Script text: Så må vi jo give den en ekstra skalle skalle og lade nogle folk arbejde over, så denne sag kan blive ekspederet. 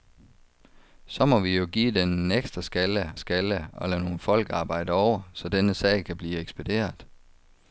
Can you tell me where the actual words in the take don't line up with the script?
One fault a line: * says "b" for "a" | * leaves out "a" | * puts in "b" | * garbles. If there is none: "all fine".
all fine